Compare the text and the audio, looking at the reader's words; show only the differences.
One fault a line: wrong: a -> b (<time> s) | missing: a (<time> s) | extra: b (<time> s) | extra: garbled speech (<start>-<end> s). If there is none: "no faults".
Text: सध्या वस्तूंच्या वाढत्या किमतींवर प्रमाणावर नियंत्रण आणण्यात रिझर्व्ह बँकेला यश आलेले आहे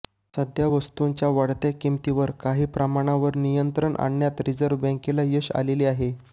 extra: काही (2.4 s)